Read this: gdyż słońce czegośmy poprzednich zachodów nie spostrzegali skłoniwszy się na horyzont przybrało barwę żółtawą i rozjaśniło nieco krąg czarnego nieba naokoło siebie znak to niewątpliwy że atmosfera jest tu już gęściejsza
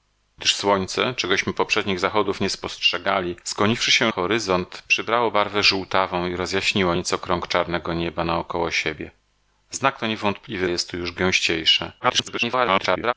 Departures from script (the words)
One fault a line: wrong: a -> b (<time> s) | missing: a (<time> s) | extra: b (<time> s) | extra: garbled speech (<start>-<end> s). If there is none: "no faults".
missing: na (4.1 s)
missing: że atmosfera (10.7 s)
extra: garbled speech (12.0-13.1 s)